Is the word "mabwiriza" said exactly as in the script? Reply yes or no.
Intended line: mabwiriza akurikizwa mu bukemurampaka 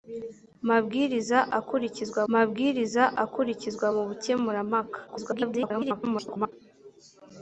yes